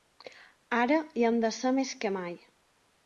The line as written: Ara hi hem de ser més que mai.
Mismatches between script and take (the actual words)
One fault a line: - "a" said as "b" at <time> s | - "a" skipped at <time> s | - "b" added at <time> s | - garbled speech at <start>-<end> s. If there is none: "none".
none